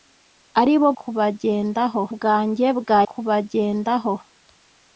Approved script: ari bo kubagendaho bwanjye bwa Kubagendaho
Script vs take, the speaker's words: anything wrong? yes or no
no